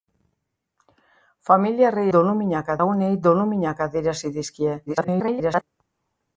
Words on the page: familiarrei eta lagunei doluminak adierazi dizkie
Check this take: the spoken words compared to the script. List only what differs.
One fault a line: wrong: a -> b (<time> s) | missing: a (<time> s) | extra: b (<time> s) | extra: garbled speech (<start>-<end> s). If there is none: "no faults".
wrong: eta -> doluminak (2.2 s)
extra: garbled speech (4.9-5.6 s)